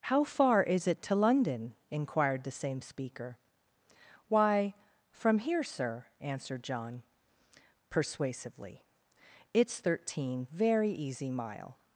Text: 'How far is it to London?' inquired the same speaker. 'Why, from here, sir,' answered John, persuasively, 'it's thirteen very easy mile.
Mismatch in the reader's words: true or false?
false